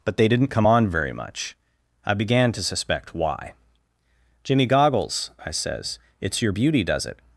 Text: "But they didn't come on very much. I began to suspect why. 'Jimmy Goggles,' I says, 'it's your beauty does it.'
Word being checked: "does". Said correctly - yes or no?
yes